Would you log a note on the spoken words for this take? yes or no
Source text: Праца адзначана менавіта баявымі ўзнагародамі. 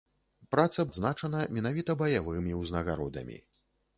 no